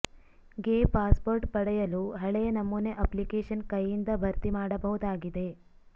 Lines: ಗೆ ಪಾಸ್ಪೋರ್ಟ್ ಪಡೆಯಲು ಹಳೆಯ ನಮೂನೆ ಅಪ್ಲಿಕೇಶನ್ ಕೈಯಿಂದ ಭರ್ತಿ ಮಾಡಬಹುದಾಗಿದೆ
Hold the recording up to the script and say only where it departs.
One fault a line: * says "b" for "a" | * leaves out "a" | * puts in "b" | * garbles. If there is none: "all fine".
all fine